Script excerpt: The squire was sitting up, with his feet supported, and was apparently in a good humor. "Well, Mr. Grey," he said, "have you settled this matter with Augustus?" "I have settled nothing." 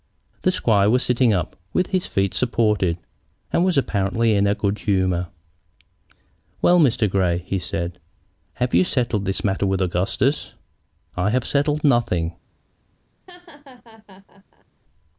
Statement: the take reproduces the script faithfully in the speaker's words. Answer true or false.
true